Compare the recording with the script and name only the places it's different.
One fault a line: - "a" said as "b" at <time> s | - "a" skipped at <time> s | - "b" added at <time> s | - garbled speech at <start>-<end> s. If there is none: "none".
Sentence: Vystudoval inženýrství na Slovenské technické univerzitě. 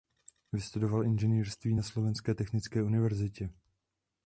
none